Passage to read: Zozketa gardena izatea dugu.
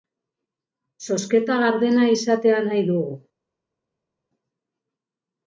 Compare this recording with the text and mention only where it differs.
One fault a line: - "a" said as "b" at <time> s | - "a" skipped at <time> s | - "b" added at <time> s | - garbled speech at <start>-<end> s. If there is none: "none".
- "nahi" added at 2.7 s